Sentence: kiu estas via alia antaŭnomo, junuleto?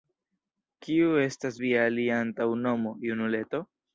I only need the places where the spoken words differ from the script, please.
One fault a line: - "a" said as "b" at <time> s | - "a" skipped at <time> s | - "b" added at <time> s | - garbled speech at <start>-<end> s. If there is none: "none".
none